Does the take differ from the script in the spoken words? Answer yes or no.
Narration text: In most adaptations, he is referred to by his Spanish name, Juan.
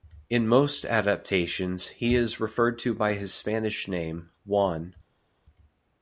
no